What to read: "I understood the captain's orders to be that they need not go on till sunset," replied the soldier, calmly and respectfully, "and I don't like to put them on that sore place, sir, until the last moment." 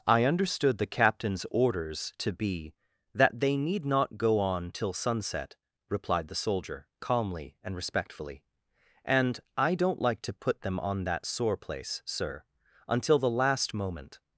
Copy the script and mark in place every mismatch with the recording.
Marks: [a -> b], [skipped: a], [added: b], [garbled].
"I understood the captain's orders to be that they need not go on till sunset," replied the soldier, calmly and respectfully, "and I don't like to put them on that sore place, sir, until the last moment."